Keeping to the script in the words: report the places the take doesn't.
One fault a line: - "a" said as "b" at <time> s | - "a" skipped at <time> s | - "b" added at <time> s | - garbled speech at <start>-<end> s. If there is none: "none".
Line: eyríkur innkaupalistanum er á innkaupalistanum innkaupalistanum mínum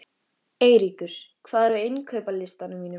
- "innkaupalistanum" said as "hvað" at 1.5 s
- "innkaupalistanum" skipped at 2.8 s